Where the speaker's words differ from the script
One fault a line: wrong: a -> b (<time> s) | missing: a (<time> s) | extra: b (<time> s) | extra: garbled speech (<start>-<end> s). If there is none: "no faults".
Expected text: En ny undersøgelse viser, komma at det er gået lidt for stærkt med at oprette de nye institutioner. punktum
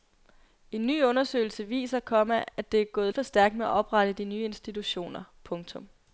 missing: lidt (3.1 s)